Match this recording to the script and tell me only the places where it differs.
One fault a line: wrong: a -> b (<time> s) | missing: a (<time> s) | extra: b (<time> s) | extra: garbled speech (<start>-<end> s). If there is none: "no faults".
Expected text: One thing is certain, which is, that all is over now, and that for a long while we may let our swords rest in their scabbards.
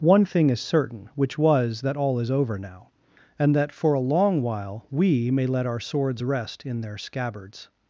wrong: is -> was (1.4 s)